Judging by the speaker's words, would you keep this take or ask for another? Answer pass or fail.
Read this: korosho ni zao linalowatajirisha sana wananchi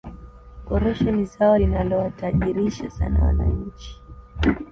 pass